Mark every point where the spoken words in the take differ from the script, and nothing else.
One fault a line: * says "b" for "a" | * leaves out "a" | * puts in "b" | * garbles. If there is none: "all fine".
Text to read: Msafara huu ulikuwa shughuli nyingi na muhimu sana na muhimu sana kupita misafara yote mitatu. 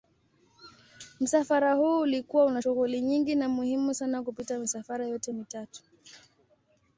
* puts in "una"
* leaves out "na muhimu sana"